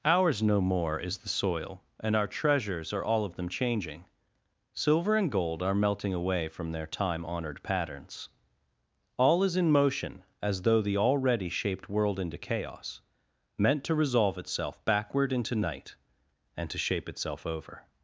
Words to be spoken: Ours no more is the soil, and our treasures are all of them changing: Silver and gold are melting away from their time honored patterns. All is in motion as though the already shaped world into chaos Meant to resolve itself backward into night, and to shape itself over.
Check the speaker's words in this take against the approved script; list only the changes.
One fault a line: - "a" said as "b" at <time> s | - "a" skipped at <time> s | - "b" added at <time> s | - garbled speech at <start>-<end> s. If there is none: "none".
none